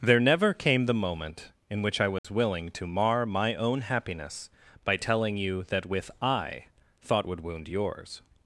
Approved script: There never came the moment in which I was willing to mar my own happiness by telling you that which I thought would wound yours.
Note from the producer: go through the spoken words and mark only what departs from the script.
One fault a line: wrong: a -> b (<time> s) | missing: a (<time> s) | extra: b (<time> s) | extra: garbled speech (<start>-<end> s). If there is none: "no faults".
wrong: which -> with (5.9 s)